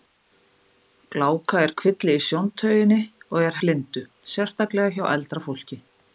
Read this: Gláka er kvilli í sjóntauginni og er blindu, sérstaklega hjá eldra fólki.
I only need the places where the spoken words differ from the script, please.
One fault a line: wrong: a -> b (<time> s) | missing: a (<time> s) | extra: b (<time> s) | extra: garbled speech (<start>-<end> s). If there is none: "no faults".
no faults